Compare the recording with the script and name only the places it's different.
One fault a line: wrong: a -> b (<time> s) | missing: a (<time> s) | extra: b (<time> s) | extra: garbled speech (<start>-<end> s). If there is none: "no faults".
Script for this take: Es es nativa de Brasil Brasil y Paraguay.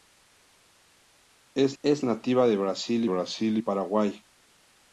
no faults